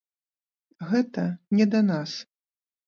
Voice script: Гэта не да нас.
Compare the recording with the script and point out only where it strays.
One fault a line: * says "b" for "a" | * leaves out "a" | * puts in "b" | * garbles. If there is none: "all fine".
all fine